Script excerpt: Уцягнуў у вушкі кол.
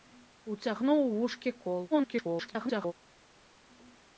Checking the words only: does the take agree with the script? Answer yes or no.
no